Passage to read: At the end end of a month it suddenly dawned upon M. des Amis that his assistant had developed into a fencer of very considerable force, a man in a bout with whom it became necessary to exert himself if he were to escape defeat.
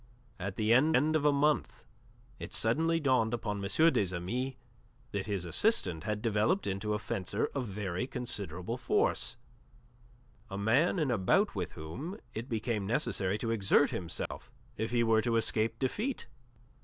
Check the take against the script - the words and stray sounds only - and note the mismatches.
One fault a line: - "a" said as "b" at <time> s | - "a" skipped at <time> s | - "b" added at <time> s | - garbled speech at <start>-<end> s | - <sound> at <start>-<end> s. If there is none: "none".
- dropout at 14.3-14.3 s